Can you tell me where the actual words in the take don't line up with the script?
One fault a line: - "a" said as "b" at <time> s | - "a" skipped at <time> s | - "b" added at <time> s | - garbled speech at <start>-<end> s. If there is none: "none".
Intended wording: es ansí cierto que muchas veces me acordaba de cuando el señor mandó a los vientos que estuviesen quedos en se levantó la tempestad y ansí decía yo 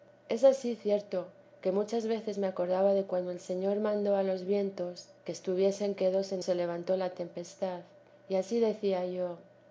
none